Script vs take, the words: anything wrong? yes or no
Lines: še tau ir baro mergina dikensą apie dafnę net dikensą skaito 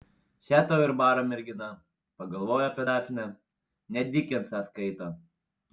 yes